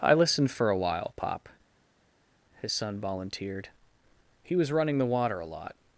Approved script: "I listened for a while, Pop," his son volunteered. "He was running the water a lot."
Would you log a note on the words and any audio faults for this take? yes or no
no